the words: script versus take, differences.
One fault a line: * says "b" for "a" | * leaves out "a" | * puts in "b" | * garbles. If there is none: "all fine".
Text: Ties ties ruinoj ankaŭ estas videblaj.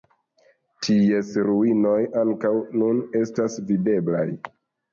* leaves out "ties"
* puts in "nun"